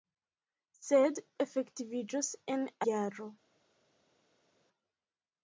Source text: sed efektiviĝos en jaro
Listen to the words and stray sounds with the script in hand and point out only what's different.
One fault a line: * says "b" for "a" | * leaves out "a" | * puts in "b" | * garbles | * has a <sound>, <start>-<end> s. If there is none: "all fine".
all fine